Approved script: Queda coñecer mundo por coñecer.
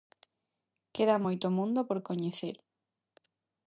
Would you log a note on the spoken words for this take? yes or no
yes